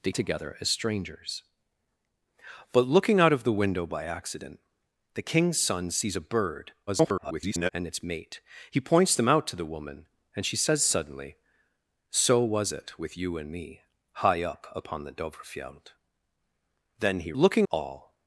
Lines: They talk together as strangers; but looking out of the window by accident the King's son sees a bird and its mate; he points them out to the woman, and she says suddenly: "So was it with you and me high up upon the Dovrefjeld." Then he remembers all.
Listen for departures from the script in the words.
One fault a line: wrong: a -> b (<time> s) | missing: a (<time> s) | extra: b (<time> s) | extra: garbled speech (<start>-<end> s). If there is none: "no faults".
missing: talk (0.1 s)
extra: garbled speech (6.9-7.7 s)
wrong: remembers -> looking (17.3 s)